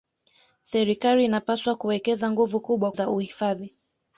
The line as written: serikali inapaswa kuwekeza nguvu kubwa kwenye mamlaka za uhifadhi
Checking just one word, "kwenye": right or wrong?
wrong